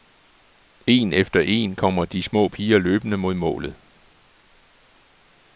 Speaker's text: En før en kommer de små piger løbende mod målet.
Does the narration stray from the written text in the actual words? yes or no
yes